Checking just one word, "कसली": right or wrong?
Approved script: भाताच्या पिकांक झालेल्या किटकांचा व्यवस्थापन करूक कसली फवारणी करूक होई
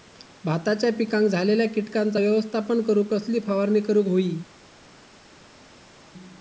right